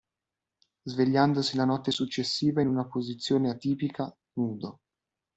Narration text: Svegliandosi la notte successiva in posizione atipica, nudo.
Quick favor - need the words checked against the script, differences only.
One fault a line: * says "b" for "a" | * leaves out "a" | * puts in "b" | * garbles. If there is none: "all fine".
* puts in "una"